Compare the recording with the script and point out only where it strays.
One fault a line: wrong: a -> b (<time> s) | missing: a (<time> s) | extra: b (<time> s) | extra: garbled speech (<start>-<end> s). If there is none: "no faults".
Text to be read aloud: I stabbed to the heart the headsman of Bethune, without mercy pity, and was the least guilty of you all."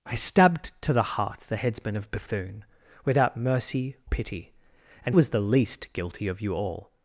no faults